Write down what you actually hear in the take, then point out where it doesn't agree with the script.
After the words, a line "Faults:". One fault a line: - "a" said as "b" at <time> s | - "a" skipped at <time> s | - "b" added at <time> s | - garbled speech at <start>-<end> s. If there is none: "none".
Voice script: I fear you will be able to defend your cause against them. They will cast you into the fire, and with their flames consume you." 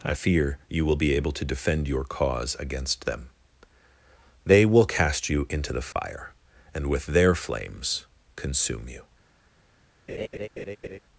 I fear you will be able to defend your cause against them. They will cast you into the fire, and with their flames consume you."
Faults:
none